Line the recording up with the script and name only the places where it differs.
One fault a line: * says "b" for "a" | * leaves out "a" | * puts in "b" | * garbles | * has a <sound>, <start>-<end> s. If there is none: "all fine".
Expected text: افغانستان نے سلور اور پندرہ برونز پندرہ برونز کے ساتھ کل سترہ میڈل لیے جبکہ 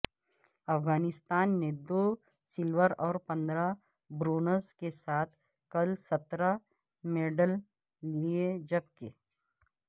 * puts in "دو"
* leaves out "پندرہ برونز"